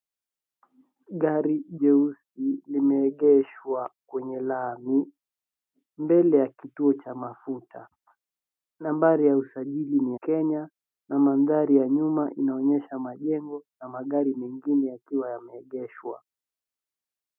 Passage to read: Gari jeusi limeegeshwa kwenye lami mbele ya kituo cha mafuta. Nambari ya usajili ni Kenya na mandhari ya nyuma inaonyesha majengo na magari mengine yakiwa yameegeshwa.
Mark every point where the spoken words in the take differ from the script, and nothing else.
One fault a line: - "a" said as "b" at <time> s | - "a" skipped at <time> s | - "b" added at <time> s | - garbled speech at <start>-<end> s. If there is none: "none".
none